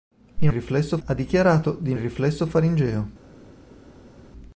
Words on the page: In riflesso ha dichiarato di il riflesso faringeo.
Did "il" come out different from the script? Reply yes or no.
no